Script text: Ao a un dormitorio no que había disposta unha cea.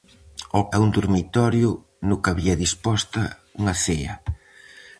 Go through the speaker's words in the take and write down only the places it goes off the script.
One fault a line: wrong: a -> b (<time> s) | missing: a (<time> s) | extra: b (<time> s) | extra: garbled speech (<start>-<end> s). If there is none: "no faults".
no faults